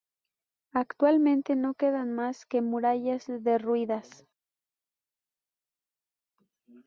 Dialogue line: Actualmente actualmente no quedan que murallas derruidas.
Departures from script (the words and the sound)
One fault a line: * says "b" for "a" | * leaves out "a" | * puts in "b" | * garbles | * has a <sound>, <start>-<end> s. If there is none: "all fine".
* leaves out "actualmente"
* puts in "más"